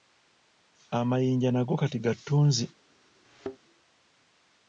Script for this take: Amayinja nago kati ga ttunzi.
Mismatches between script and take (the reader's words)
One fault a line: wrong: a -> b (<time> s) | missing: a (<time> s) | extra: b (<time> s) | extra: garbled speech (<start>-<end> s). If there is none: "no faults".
no faults